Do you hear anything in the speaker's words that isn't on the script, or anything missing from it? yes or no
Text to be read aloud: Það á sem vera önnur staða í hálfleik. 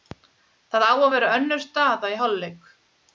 yes